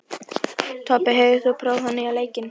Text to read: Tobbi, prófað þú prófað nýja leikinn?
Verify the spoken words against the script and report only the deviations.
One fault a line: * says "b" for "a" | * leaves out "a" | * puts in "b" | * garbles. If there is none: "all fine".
* says "hefur" for "prófað"